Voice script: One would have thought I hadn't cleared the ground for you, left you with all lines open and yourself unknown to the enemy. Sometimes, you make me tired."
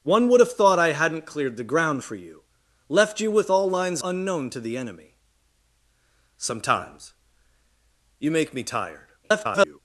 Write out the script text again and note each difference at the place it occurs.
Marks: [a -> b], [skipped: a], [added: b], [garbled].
One would have thought I hadn't cleared the ground for you, left you with all lines [skipped: open and yourself] unknown to the enemy. Sometimes, you make me tired." [garbled]